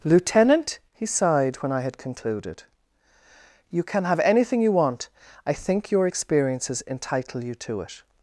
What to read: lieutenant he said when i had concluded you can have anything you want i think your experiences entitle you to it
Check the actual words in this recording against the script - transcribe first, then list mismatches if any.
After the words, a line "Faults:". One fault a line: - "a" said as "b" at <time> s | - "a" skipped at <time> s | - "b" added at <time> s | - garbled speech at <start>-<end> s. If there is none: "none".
lieutenant he sighed when i had concluded you can have anything you want i think your experiences entitle you to it
Faults:
- "said" said as "sighed" at 1.1 s